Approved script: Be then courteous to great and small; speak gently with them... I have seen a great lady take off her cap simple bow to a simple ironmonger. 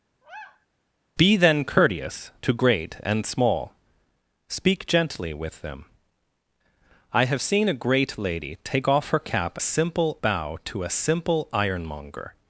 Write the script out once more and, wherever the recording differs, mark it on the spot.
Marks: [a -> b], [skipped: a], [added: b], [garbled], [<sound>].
[sigh] Be then courteous to great and small; speak gently with them... I have seen a great lady take off her cap simple bow to a simple ironmonger.